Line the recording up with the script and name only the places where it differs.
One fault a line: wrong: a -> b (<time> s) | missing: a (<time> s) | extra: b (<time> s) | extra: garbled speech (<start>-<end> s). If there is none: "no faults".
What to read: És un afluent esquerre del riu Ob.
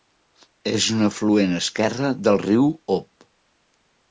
no faults